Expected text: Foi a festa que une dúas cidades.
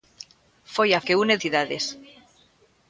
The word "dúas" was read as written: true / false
false